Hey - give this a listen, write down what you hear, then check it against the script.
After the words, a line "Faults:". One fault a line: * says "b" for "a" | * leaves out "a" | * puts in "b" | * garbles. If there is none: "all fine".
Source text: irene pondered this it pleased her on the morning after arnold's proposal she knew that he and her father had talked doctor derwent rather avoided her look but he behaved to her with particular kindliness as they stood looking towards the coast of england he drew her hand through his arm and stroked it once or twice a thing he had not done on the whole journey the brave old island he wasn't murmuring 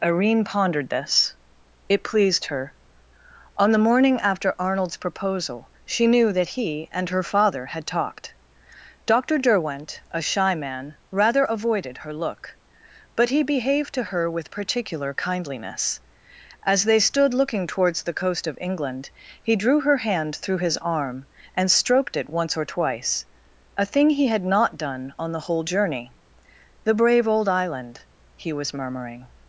irene pondered this it pleased her on the morning after arnold's proposal she knew that he and her father had talked doctor derwent a shy man rather avoided her look but he behaved to her with particular kindliness as they stood looking towards the coast of england he drew her hand through his arm and stroked it once or twice a thing he had not done on the whole journey the brave old island he was murmuring
Faults:
* puts in "a shy man"
* says "was" for "wasn't"